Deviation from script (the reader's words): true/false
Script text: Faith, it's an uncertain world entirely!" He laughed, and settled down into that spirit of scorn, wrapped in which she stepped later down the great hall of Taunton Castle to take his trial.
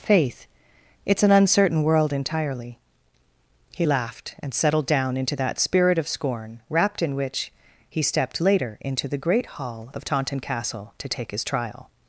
true